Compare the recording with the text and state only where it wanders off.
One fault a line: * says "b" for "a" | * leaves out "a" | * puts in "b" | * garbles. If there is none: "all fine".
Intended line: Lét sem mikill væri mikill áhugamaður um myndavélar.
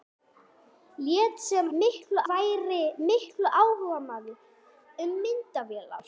all fine